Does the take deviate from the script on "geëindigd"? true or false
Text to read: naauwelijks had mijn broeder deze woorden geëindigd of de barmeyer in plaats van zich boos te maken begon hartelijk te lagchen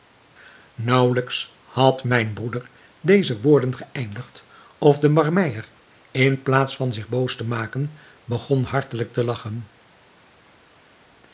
false